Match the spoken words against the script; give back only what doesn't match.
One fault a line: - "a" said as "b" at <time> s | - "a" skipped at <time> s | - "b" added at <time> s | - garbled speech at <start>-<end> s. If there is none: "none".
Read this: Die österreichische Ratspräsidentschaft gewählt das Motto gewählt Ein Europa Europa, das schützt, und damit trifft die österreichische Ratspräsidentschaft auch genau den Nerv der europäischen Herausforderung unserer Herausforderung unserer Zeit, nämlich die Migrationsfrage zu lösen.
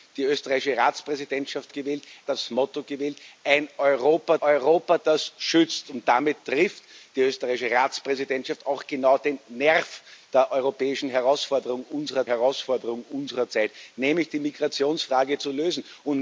none